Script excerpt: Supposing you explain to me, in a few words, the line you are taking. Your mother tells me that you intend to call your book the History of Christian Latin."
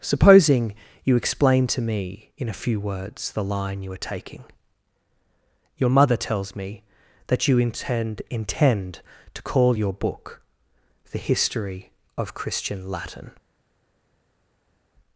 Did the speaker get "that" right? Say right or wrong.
right